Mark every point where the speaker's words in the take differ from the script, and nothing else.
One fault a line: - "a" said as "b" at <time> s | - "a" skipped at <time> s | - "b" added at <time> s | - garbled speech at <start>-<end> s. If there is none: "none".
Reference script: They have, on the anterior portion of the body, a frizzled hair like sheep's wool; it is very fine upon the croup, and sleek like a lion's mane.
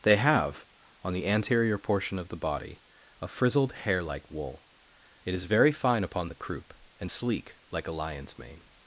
- "sheep's" skipped at 4.3 s